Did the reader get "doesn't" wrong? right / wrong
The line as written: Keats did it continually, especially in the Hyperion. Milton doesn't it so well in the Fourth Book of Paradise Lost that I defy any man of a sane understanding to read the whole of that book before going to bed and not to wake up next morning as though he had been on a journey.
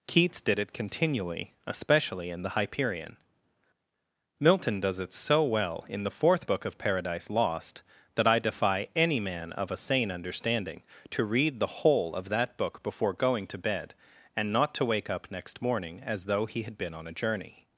wrong